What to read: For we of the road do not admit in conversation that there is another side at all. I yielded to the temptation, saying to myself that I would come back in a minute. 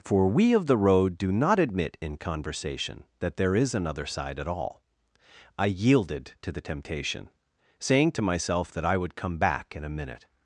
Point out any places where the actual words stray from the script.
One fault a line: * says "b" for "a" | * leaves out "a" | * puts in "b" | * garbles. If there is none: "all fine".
all fine